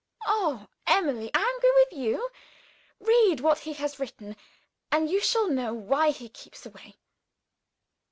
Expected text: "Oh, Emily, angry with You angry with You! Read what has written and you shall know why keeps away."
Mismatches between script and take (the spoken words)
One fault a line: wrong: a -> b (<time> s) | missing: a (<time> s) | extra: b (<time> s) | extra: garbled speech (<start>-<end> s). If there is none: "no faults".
missing: angry with You (2.3 s)
extra: he (3.6 s)
extra: he (6.1 s)